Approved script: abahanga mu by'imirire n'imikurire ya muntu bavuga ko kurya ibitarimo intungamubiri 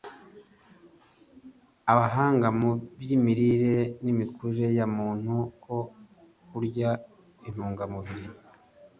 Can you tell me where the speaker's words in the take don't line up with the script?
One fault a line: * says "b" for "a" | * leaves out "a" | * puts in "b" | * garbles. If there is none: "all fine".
* leaves out "bavuga"
* leaves out "ibitarimo"